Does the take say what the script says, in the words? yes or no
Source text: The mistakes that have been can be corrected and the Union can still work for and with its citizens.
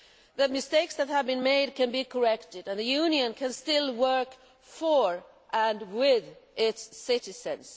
no